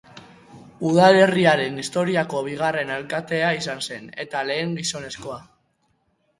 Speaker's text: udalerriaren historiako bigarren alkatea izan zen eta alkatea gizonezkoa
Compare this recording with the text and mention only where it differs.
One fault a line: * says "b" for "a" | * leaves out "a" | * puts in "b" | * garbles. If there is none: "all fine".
* says "lehen" for "alkatea"